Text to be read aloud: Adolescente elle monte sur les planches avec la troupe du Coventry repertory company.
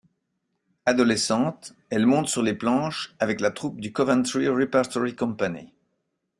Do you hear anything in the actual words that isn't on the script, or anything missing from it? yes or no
no